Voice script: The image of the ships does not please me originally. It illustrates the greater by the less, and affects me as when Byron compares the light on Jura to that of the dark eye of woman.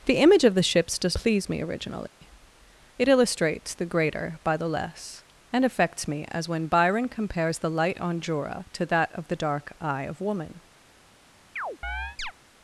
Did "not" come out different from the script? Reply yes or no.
yes